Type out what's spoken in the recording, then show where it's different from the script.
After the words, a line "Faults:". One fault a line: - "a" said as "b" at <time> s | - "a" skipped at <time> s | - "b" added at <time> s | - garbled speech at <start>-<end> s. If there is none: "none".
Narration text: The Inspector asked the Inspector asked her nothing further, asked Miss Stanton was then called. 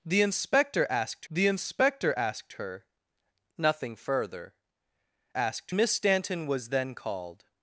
The Inspector asked the Inspector asked her nothing further, asked Miss Stanton was then called.
Faults:
none